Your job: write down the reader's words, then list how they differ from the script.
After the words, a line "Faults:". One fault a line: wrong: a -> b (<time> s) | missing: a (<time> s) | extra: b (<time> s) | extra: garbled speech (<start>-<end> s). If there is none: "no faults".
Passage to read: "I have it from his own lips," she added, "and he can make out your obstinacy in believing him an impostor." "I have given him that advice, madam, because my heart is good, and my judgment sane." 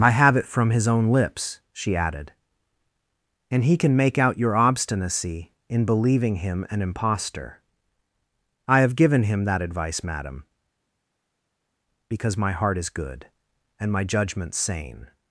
"I have it from his own lips," she added, "and he can make out your obstinacy in believing him an impostor." "I have given him that advice, madam, because my heart is good, and my judgment sane."
Faults:
no faults